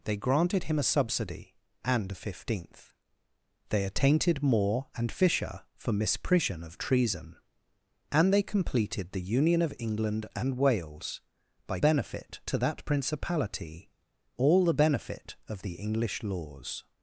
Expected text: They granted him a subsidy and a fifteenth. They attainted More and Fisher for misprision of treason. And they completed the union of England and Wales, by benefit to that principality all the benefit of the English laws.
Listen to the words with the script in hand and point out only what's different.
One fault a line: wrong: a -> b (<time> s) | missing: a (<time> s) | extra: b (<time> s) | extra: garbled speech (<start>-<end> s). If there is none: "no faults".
no faults